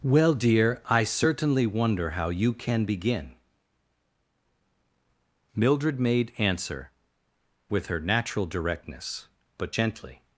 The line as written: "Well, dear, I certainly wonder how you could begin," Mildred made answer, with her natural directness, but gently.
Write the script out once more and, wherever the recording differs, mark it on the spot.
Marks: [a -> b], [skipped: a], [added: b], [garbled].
"Well, dear, I certainly wonder how you [could -> can] begin," Mildred made answer, with her natural directness, but gently.